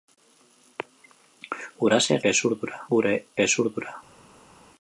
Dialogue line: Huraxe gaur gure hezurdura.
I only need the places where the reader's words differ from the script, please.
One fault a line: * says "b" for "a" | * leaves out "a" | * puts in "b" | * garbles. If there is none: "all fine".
* says "hezurdura" for "gaur"